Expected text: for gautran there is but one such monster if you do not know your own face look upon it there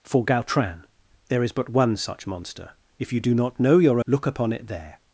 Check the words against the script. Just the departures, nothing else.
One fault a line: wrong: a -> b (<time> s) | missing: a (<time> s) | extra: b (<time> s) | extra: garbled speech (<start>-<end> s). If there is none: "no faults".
missing: own face (4.0 s)